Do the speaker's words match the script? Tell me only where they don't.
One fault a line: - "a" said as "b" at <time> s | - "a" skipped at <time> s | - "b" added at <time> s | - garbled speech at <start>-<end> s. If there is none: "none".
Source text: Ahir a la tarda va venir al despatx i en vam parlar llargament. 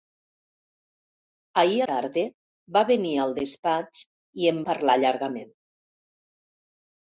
- "la" skipped at 1.9 s
- "vam" skipped at 4.6 s